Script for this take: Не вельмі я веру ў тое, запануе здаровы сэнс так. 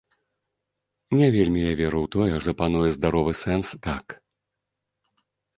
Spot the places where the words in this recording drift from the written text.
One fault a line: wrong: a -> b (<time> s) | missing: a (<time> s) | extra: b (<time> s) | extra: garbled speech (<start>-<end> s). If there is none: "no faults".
no faults